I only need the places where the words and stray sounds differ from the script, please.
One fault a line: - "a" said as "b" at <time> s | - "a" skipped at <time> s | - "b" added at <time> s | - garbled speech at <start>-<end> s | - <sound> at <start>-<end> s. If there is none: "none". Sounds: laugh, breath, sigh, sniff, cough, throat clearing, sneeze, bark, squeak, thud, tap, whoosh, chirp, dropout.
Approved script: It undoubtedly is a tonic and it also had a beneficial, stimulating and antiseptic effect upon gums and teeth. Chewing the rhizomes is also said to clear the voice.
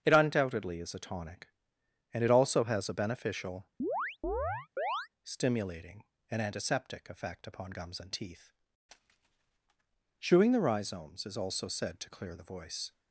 - "had" said as "has" at 2.6 s
- chirp at 3.8-5.1 s